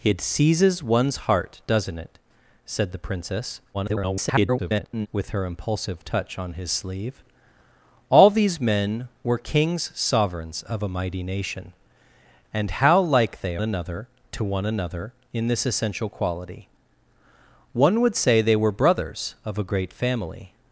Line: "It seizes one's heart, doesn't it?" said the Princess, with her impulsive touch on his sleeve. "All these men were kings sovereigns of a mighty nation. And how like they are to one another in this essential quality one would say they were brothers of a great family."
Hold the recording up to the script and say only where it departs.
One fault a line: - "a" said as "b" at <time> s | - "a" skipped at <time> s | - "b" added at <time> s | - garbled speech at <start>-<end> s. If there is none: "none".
- garbled speech at 3.7-5.1 s
- "are" said as "another" at 13.6 s